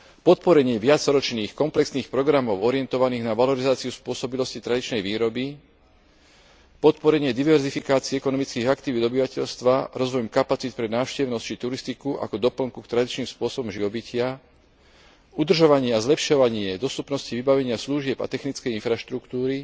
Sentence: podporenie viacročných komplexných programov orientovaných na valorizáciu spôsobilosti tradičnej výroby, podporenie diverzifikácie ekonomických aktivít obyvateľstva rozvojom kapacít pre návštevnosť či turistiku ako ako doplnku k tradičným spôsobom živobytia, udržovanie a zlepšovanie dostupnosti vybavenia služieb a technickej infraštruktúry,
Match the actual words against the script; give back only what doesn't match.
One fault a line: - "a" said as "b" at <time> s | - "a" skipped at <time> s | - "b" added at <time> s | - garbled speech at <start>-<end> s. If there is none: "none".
- "ako" skipped at 12.4 s